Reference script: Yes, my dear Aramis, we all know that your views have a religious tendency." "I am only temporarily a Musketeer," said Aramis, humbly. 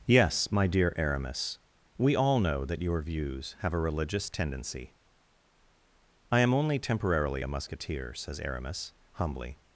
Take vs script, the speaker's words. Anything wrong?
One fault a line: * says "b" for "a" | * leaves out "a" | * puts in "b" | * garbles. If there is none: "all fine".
* says "says" for "said"